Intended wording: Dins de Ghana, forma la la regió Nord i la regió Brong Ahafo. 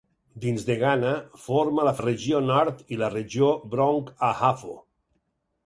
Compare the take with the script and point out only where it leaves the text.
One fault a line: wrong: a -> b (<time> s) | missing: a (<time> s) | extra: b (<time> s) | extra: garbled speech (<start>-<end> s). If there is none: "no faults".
no faults